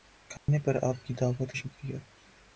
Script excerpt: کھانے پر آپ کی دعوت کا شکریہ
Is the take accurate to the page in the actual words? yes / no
no